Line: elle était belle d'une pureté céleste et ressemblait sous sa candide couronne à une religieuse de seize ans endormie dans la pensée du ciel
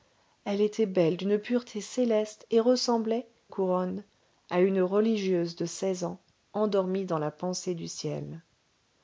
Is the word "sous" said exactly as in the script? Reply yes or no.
no